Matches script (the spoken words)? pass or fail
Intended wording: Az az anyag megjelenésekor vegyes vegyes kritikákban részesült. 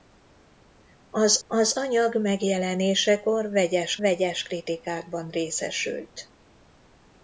pass